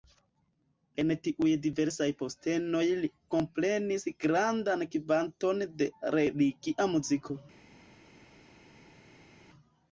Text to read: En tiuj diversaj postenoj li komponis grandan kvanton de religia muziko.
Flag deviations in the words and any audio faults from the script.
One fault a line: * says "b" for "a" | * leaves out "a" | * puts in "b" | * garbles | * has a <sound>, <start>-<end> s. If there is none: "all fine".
all fine